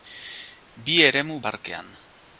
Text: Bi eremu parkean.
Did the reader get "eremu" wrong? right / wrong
right